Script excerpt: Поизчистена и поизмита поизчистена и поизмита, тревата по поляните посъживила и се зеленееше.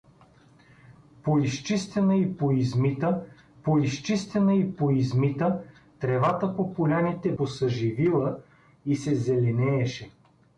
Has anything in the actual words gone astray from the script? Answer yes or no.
no